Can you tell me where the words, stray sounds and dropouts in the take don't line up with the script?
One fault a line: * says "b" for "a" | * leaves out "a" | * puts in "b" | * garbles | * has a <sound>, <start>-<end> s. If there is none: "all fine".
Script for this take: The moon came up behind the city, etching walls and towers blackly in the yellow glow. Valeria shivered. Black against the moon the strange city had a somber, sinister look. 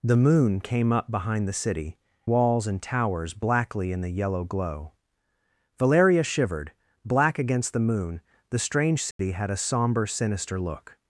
* leaves out "etching"
* has a dropout, 9.1-9.2 s